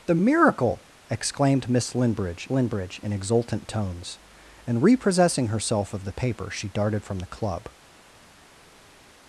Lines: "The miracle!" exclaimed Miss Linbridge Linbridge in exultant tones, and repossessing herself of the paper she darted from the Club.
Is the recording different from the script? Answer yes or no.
no